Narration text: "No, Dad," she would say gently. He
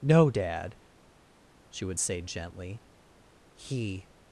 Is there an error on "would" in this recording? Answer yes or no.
no